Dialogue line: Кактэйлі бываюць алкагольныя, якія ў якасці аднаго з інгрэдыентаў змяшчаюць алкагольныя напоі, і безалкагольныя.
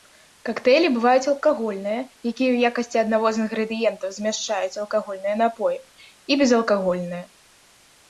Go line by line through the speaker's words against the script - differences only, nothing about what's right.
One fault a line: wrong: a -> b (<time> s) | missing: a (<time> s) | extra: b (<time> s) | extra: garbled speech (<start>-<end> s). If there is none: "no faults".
no faults